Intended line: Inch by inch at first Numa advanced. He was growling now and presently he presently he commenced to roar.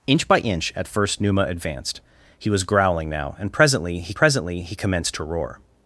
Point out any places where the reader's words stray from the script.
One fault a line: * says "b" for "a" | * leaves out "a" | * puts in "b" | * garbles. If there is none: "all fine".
all fine